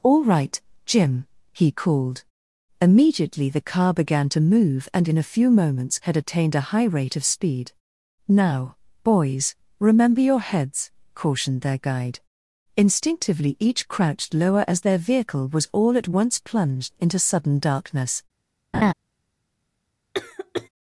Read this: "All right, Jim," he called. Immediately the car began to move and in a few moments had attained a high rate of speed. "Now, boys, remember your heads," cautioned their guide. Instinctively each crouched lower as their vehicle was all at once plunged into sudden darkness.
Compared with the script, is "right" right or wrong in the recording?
right